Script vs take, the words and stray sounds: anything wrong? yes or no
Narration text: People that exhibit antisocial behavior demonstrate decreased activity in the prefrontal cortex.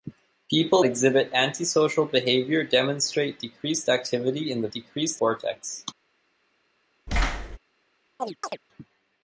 yes